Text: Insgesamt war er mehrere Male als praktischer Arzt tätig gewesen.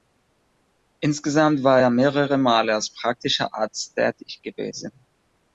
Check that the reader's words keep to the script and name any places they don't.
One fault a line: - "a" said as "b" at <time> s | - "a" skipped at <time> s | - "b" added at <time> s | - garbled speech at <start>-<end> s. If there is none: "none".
none